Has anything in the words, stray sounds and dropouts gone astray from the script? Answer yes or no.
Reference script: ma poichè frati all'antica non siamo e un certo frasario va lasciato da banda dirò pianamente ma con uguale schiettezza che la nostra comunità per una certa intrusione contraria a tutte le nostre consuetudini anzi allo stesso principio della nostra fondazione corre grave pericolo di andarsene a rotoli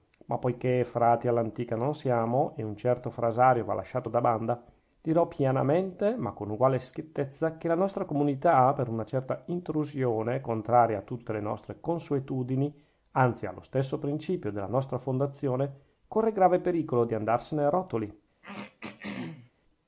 yes